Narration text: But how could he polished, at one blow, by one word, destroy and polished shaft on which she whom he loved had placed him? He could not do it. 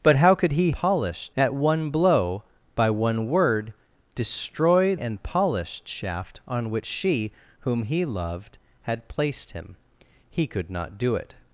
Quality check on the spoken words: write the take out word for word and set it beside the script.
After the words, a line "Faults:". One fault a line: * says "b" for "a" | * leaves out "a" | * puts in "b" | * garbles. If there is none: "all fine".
But how could he polished, at one blow, by one word, destroy and polished shaft on which she whom he loved had placed him? He could not do it.
Faults:
all fine